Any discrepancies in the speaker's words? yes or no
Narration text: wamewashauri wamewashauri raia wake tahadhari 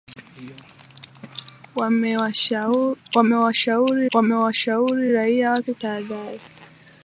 no